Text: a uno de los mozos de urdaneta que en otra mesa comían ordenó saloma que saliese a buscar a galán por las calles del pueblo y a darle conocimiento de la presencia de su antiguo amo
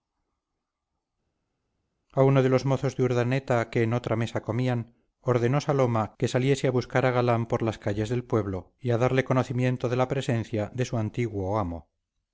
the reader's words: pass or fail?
pass